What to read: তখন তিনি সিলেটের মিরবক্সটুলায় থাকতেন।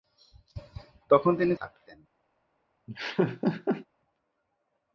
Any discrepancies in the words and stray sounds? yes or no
yes